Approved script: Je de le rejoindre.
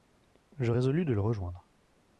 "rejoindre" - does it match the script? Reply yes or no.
yes